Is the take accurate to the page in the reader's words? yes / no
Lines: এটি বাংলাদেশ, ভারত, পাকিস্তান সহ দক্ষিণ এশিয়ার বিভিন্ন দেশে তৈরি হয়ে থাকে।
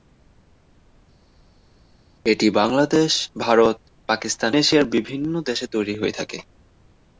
no